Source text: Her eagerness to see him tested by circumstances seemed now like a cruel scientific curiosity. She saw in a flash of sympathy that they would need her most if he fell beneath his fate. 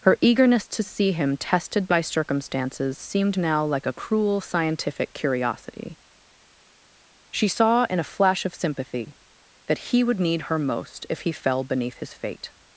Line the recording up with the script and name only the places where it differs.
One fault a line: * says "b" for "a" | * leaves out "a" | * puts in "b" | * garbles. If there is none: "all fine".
* says "he" for "they"